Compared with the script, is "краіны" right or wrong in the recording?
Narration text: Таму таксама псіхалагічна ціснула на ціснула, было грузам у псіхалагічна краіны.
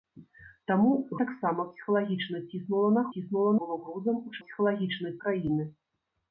right